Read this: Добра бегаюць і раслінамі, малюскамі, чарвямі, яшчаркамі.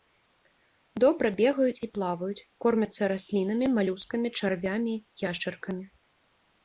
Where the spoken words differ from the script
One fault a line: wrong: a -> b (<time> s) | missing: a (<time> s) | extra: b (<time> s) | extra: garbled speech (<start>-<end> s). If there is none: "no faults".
extra: плаваюць кормяцца (2.0 s)